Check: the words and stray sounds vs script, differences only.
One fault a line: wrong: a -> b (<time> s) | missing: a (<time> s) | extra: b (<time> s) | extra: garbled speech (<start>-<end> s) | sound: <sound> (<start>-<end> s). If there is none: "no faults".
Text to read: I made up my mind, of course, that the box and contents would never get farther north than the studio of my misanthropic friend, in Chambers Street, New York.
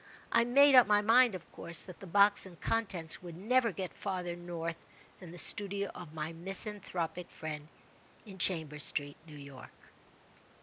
no faults